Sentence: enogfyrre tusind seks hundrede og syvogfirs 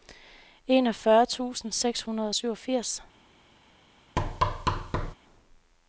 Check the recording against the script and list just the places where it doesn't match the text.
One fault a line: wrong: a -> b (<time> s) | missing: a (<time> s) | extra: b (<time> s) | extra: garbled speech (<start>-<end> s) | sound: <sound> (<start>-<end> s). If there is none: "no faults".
sound: thud (4.2-5.1 s)